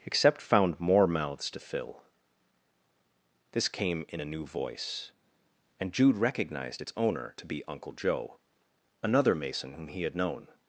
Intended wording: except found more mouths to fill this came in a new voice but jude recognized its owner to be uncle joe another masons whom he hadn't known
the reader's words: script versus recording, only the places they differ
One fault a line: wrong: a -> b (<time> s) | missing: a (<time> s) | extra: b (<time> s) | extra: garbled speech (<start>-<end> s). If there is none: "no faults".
wrong: but -> and (5.8 s)
wrong: masons -> mason (9.3 s)
wrong: hadn't -> had (10.0 s)